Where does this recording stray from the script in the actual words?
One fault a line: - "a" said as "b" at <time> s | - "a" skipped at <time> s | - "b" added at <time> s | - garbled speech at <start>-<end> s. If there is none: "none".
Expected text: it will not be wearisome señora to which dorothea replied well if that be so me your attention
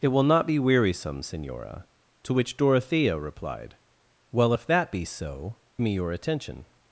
none